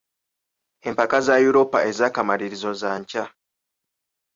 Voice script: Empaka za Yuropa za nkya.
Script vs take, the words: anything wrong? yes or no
yes